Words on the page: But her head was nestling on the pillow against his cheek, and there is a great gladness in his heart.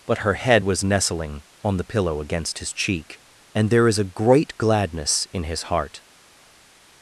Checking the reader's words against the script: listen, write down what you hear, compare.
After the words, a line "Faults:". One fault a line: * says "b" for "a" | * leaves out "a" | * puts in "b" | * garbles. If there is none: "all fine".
But her head was nestling on the pillow against his cheek, and there is a great gladness in his heart.
Faults:
all fine